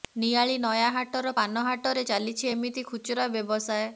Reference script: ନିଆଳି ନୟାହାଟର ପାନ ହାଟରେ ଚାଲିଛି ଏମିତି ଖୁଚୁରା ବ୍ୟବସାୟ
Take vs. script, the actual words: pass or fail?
pass